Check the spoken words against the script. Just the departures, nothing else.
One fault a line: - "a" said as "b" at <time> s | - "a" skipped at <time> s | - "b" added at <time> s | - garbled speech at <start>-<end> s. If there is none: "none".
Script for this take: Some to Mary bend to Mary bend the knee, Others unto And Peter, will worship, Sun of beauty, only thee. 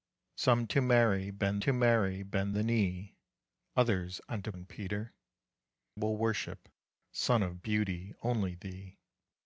none